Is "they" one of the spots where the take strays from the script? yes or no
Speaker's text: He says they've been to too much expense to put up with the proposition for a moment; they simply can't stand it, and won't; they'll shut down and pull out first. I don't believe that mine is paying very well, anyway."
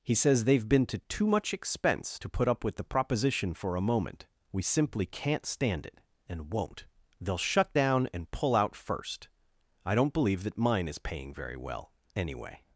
yes